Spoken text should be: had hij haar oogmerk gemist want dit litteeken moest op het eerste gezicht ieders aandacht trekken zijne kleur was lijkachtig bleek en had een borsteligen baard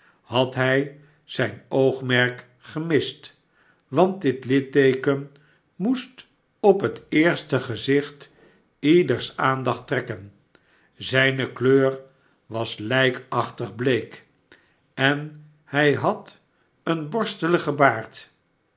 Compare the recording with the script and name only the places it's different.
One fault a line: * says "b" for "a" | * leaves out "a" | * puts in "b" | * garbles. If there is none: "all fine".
* says "zijn" for "haar"
* puts in "hij"